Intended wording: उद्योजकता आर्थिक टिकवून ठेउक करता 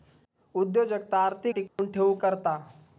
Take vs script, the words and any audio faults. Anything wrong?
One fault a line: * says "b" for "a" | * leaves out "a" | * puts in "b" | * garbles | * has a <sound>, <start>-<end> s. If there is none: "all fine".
* has a dropout, 1.7-1.8 s